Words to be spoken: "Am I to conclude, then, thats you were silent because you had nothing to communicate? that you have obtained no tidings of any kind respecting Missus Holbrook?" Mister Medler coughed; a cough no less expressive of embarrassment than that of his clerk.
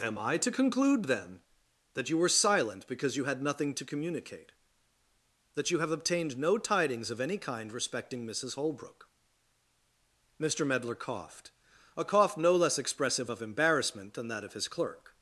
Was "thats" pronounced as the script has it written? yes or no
no